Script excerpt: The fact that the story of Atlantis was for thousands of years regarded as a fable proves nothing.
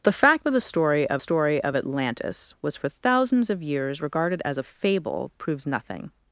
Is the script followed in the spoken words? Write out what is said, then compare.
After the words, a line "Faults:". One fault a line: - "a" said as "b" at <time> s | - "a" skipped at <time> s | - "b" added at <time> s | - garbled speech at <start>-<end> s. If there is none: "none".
The fact that the story of story of Atlantis was for thousands of years regarded as a fable proves nothing.
Faults:
- "story of" added at 1.2 s